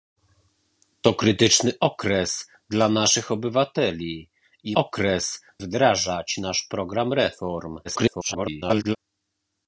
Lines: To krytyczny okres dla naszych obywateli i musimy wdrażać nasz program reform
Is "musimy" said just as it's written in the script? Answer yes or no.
no